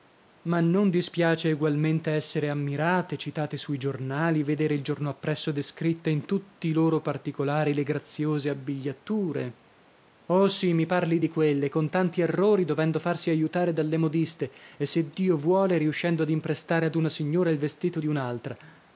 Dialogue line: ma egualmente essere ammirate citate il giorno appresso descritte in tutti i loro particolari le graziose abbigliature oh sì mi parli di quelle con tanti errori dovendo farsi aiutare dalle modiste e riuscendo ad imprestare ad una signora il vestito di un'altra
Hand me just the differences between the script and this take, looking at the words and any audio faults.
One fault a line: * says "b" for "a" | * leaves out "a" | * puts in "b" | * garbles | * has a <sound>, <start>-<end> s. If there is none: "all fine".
* puts in "non dispiace"
* puts in "sui giornali vedere"
* puts in "se dio vuole"